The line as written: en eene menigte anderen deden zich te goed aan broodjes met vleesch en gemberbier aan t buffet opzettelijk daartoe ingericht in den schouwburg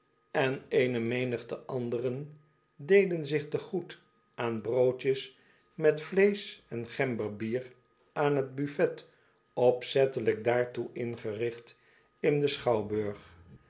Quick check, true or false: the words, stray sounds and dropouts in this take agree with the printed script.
true